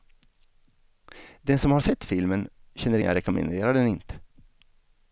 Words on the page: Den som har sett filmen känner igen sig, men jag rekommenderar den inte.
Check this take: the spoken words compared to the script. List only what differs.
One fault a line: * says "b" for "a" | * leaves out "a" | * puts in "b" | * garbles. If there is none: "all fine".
* leaves out "igen sig men"